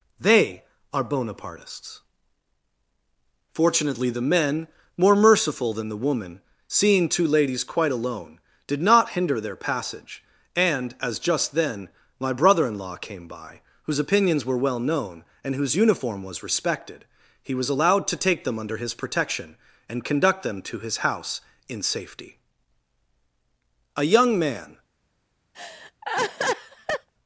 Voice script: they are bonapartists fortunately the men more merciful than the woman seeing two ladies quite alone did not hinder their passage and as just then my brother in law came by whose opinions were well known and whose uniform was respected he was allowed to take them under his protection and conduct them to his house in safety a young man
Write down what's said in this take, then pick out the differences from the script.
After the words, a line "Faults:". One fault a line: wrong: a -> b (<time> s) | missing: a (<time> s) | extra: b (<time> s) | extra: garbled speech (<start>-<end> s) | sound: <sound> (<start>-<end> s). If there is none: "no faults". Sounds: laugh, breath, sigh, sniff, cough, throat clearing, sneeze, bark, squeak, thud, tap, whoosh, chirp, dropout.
they are bonapartists fortunately the men more merciful than the woman seeing two ladies quite alone did not hinder their passage and as just then my brother in law came by whose opinions were well known and whose uniform was respected he was allowed to take them under his protection and conduct them to his house in safety a young man
Faults:
sound: laugh (25.5-27.1 s)